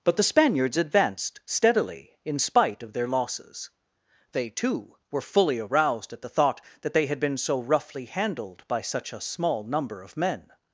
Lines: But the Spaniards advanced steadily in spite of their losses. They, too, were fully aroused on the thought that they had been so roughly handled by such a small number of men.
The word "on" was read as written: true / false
false